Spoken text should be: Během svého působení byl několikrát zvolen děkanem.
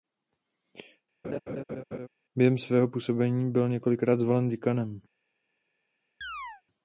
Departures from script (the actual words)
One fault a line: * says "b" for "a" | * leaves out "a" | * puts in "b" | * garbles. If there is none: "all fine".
all fine